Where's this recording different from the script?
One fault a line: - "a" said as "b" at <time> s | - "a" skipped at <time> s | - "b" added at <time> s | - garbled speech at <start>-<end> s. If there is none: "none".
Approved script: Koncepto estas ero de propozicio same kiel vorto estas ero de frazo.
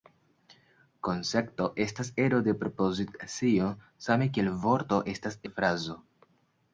- "ero" skipped at 5.4 s